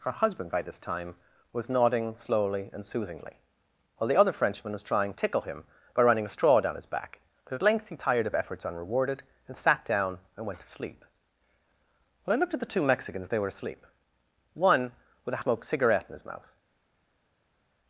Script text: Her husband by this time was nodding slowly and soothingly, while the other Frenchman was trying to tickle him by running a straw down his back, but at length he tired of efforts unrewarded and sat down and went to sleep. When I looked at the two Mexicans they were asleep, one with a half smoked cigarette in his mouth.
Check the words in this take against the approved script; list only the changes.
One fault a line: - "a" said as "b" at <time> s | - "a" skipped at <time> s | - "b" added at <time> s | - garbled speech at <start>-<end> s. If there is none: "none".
- "to" skipped at 5.1 s
- "half" skipped at 15.4 s